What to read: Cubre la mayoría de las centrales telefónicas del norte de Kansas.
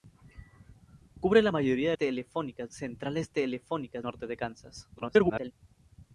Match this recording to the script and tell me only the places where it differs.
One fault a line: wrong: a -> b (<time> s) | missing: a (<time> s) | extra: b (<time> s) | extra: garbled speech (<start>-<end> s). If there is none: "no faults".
wrong: las -> telefónicas (1.9 s)
missing: del (4.1 s)
extra: garbled speech (4.9-5.5 s)